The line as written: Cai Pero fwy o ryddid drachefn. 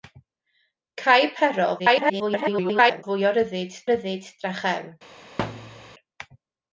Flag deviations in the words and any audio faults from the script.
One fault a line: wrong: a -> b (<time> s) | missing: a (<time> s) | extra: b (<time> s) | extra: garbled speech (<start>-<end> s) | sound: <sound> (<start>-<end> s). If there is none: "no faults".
extra: garbled speech (1.8-3.0 s)
extra: ryddid (3.9 s)
sound: thud (5.4-5.9 s)